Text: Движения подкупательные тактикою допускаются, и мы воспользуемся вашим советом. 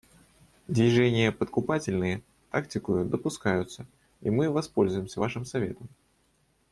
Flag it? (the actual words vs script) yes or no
no